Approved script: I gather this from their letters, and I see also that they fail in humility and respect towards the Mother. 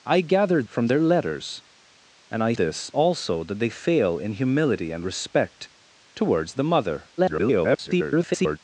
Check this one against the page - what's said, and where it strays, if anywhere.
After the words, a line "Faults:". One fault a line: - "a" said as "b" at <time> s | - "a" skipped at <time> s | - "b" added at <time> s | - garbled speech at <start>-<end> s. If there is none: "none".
I gather from their letters, and I this also that they fail in humility and respect towards the Mother. [garbled]
Faults:
- "this" skipped at 0.6 s
- "see" said as "this" at 2.5 s
- garbled speech at 7.2-8.6 s